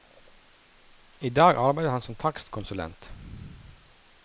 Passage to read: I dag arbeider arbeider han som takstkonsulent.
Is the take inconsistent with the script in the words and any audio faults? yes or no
yes